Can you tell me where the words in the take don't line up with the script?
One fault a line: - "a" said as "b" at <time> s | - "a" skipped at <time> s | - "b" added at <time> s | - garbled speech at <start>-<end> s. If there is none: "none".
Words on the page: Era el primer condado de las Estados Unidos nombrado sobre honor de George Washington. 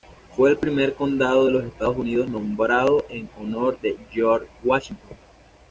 - "Era" said as "Fue" at 0.3 s
- "las" said as "los" at 1.5 s
- "sobre" said as "en" at 3.1 s